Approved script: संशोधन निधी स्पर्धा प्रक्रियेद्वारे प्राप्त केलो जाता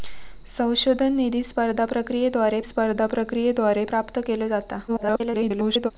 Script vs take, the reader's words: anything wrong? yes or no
yes